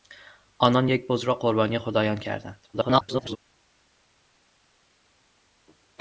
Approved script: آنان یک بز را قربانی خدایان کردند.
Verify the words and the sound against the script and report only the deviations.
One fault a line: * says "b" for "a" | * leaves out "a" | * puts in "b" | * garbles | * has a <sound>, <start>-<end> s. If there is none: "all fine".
* garbles